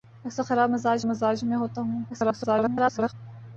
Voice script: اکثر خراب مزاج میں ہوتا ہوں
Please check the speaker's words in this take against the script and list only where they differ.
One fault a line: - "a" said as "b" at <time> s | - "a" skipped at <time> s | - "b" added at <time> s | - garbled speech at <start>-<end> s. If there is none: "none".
- "مزاج" added at 1.1 s
- garbled speech at 2.1-3.1 s